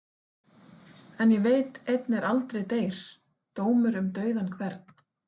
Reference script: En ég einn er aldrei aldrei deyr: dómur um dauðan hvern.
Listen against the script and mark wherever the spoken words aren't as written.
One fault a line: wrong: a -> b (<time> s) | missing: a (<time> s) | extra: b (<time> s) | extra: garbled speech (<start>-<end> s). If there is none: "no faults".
extra: veit (1.5 s)
missing: aldrei (2.6 s)